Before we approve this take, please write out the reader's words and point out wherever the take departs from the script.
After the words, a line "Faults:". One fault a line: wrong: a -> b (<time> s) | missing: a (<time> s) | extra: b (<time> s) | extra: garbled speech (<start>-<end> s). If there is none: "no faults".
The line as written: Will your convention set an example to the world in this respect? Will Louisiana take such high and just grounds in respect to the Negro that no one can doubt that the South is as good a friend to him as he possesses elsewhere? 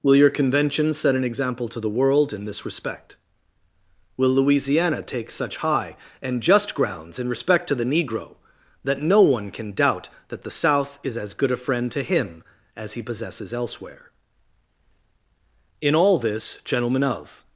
Will your convention set an example to the world in this respect? Will Louisiana take such high and just grounds in respect to the Negro that no one can doubt that the South is as good a friend to him as he possesses elsewhere? In all this, gentlemen of
Faults:
extra: In all this gentlemen of (15.8 s)